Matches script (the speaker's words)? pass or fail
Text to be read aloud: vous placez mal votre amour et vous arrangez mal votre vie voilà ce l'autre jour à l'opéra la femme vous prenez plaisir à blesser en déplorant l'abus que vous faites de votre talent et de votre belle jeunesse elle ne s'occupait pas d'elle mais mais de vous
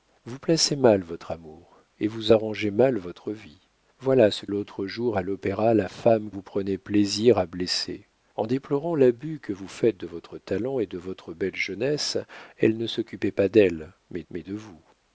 pass